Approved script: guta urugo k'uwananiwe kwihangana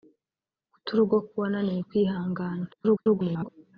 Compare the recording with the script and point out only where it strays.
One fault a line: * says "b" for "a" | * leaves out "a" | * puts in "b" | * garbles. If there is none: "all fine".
* garbles